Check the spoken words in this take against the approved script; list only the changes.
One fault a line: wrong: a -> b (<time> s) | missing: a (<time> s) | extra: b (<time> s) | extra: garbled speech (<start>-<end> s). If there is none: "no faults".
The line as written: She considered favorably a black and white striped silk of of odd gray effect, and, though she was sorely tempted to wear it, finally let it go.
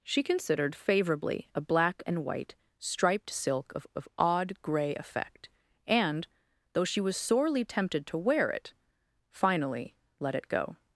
no faults